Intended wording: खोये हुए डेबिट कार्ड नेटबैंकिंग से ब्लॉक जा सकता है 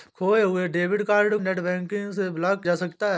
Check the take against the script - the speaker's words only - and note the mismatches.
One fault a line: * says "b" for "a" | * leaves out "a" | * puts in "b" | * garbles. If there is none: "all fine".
all fine